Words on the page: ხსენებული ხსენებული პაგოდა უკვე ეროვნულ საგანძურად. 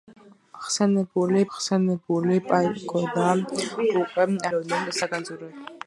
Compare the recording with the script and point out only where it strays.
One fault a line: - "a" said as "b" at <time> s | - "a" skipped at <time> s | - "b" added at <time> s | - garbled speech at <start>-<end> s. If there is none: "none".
none